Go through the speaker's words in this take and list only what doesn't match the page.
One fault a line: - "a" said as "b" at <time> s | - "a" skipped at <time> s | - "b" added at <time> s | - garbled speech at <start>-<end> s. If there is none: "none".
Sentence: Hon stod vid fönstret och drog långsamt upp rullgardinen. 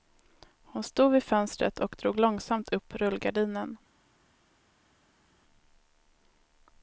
none